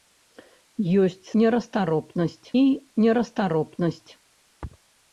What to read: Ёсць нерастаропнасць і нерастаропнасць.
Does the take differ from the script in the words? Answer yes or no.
no